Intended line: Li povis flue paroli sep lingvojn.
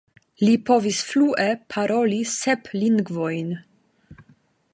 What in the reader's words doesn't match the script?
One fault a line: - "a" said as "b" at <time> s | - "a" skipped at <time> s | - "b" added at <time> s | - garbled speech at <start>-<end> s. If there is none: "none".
none